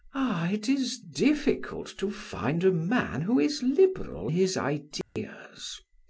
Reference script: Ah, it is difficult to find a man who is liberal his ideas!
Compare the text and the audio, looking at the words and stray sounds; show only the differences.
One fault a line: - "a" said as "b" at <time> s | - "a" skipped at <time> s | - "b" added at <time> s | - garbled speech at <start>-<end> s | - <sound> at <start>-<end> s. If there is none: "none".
- dropout at 5.0-5.2 s